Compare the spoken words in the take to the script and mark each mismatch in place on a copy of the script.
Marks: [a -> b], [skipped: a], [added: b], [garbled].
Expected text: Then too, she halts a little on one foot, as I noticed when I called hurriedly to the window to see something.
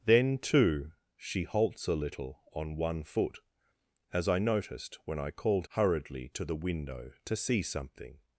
Then too, she halts a little on one foot, as I noticed when I called hurriedly to the window to see something.